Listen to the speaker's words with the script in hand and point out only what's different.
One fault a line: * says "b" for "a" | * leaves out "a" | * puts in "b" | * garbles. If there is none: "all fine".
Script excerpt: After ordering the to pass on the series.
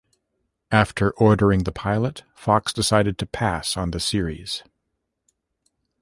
* puts in "pilot Fox decided"